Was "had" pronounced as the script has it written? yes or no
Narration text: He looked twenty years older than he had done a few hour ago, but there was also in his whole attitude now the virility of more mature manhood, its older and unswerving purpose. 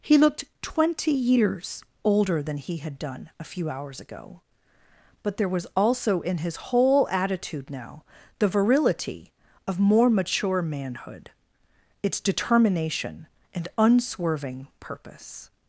yes